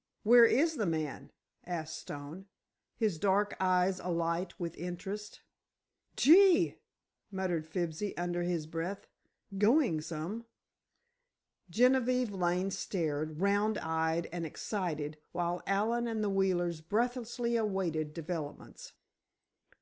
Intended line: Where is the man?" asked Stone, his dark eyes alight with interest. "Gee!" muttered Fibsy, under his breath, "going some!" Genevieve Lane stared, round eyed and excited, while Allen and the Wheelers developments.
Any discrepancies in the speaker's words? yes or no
yes